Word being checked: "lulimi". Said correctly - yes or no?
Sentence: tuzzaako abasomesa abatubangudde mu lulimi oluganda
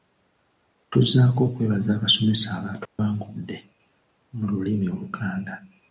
yes